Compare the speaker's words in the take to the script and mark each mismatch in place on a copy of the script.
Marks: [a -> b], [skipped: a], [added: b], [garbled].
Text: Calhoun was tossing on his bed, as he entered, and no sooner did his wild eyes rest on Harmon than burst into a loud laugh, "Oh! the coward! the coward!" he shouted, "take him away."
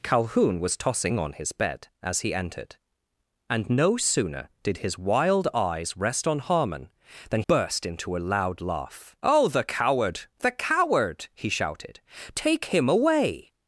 Calhoun was tossing on his bed, as he entered, and no sooner did his wild eyes rest on Harmon than burst into a loud laugh, "Oh! the coward! the coward!" he shouted, "take him away."